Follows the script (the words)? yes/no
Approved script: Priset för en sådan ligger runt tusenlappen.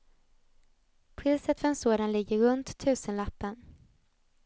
yes